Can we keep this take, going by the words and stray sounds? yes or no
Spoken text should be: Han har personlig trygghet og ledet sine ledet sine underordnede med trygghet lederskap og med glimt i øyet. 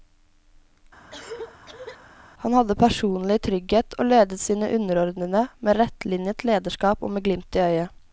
no